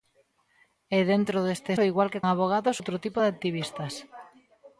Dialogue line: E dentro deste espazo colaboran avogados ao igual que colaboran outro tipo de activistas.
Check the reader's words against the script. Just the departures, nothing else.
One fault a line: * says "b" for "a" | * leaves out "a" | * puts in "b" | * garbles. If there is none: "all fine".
* leaves out "espazo colaboran avogados"
* says "avogados" for "colaboran"